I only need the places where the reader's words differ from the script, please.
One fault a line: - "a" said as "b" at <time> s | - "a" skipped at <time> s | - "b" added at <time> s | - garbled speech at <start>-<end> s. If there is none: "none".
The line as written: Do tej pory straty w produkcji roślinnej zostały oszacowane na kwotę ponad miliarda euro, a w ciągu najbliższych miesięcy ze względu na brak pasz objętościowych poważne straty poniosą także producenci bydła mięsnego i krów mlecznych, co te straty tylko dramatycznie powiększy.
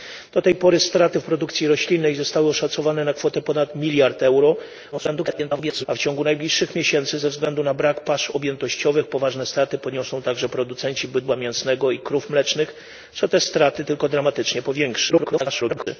- garbled speech at 4.9-5.9 s
- garbled speech at 15.1-15.9 s